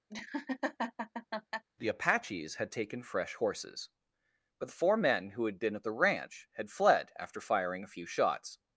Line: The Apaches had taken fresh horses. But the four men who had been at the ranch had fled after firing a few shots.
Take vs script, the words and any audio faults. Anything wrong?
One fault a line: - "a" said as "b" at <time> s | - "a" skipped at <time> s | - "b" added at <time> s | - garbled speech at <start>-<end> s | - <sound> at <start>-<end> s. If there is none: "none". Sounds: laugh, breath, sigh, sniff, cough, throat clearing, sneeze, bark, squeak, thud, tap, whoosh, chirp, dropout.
- laugh at 0.1-1.6 s